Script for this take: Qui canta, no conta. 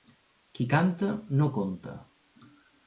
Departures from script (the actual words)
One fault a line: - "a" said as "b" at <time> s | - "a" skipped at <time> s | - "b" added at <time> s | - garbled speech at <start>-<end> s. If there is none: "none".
none